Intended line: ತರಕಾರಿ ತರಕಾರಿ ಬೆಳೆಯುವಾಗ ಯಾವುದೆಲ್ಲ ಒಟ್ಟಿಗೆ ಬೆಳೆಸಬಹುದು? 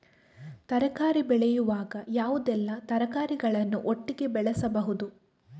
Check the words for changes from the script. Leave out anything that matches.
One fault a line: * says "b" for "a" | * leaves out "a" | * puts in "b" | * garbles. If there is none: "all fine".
* leaves out "ತರಕಾರಿ"
* puts in "ತರಕಾರಿಗಳನ್ನು"